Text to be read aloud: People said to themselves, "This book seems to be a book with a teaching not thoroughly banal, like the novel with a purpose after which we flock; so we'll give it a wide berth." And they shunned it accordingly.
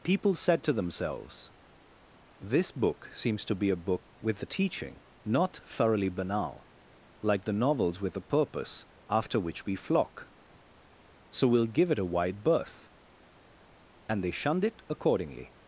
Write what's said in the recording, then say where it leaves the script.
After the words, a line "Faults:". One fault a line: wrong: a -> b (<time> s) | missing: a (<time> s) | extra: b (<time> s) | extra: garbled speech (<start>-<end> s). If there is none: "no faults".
People said to themselves, "This book seems to be a book with a teaching not thoroughly banal, like the novels with a purpose after which we flock; so we'll give it a wide berth." And they shunned it accordingly.
Faults:
wrong: novel -> novels (7.5 s)